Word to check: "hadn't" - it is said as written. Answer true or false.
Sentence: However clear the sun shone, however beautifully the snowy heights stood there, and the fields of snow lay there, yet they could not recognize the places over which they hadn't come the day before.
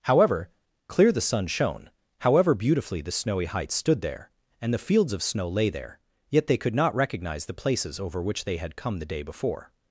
false